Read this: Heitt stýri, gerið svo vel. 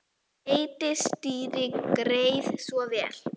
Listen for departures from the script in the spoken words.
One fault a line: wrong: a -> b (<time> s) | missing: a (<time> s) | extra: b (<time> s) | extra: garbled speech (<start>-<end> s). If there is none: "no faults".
no faults